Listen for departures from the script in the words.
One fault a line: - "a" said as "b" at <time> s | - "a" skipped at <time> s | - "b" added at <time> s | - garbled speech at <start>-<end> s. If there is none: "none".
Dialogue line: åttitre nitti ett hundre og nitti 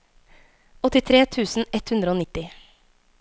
- "nitti" said as "tusen" at 1.4 s